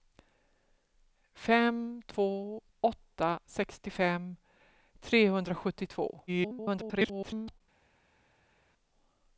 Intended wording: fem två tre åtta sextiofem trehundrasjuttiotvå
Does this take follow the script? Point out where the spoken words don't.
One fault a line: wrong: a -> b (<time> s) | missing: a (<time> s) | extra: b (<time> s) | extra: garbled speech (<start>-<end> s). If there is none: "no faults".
missing: tre (2.6 s)
extra: garbled speech (6.3-7.6 s)